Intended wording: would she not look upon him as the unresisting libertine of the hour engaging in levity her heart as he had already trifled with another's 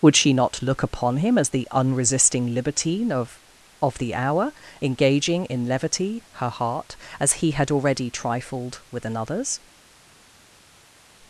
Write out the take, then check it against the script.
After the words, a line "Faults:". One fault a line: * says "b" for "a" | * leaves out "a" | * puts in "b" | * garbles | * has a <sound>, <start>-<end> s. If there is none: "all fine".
would she not look upon him as the unresisting libertine of of the hour engaging in levity her heart as he had already trifled with another's
Faults:
* puts in "of"